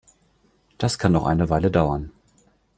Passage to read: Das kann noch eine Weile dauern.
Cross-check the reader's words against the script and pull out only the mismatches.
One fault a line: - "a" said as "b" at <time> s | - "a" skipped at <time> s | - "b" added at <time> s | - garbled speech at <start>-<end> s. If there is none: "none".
none